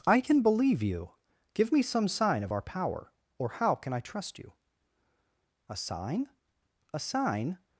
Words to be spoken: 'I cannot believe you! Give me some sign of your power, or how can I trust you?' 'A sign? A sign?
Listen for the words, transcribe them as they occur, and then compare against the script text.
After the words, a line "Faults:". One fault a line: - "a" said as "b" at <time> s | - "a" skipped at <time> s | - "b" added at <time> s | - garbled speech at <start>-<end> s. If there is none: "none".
'I can believe you! Give me some sign of our power, or how can I trust you?' 'A sign? A sign?
Faults:
- "cannot" said as "can" at 0.2 s
- "your" said as "our" at 2.5 s